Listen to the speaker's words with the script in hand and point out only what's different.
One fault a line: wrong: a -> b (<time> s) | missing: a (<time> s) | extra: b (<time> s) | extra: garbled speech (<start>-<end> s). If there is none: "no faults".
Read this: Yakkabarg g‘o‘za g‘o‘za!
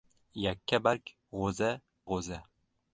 no faults